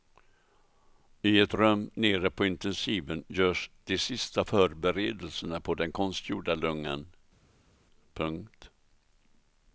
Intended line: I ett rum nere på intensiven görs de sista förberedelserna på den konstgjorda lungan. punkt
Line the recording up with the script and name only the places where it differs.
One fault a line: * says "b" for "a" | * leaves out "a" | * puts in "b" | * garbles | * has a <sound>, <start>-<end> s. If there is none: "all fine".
all fine